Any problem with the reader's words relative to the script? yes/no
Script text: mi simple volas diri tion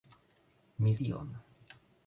yes